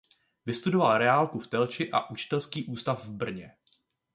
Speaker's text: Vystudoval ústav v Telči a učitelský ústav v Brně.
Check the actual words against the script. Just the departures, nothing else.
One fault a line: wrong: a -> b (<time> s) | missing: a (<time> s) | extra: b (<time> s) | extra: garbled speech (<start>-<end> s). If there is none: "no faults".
wrong: ústav -> reálku (1.0 s)